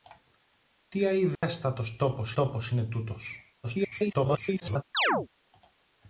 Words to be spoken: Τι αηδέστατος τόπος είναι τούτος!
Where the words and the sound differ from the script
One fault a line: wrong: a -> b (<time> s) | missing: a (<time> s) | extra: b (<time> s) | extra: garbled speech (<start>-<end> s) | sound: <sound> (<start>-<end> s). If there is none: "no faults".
sound: dropout (1.4-1.4 s)
extra: τόπος (2.3 s)
extra: garbled speech (3.6-4.8 s)
sound: chirp (4.9-5.3 s)